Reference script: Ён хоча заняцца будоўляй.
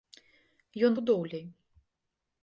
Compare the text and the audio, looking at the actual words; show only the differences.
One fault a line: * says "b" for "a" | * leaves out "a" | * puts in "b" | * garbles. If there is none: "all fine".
* leaves out "хоча заняцца"